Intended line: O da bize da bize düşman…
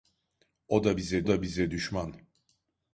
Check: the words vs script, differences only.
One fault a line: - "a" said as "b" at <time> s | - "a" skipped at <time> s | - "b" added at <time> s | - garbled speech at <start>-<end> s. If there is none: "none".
none